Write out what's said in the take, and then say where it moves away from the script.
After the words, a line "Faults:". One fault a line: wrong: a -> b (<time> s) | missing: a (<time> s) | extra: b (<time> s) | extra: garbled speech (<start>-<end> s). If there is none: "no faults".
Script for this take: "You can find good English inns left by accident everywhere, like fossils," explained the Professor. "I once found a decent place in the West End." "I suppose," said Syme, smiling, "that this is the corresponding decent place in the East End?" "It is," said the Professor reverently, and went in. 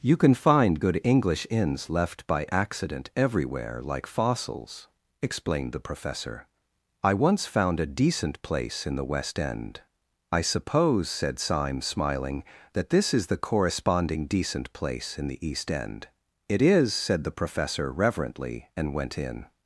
"You can find good English inns left by accident everywhere, like fossils," explained the Professor. "I once found a decent place in the West End." "I suppose," said Syme, smiling, "that this is the corresponding decent place in the East End?" "It is," said the Professor reverently, and went in.
Faults:
no faults